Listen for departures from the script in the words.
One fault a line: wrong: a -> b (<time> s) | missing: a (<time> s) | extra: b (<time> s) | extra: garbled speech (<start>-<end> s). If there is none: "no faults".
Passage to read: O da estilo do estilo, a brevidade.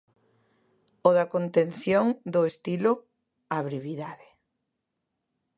wrong: estilo -> contención (1.4 s)